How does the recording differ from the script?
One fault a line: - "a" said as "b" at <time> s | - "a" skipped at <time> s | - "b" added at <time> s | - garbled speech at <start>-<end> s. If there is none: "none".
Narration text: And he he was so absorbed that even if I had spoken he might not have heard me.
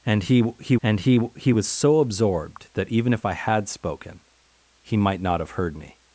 - "and he he" added at 0.8 s